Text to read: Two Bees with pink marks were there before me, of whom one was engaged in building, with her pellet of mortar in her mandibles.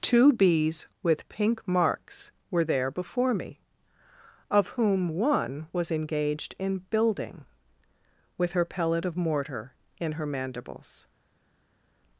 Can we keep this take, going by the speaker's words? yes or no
yes